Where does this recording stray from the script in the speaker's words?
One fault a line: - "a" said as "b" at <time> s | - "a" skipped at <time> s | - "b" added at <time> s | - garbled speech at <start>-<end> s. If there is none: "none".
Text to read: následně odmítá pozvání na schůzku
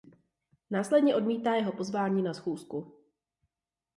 - "jeho" added at 1.6 s